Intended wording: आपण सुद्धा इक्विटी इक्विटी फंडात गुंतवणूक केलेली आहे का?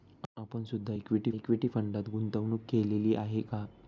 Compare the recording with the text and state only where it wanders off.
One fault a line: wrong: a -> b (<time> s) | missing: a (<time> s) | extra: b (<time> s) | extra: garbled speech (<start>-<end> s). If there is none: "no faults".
no faults